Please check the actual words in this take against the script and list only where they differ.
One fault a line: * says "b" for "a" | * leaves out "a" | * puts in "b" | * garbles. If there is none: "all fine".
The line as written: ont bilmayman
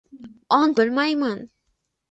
all fine